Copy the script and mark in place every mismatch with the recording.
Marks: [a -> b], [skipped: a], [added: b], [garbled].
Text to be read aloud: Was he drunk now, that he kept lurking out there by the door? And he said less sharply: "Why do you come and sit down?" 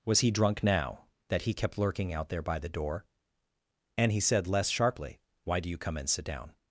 Was he drunk now, that he kept lurking out there by the door? And he said less sharply: "Why do you come and sit down?"